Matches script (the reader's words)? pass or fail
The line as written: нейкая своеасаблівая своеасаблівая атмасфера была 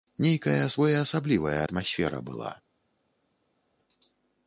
fail